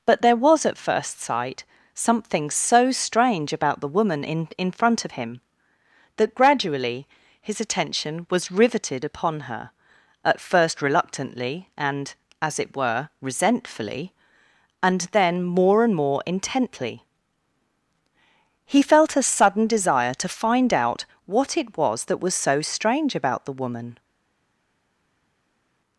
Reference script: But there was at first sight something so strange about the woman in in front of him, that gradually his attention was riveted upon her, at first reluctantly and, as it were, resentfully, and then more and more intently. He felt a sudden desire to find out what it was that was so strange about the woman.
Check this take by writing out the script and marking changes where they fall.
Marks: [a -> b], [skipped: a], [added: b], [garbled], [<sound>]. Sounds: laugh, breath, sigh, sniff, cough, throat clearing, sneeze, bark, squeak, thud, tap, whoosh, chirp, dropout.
But there was at first sight something so strange about the woman in in front of him, that gradually his attention was riveted upon her, at first reluctantly and, as it were, resentfully, and then more and more intently. He felt a sudden desire to find out what it was that was so strange about the woman.